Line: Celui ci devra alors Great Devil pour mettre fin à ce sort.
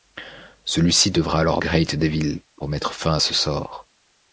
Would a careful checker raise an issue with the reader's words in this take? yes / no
no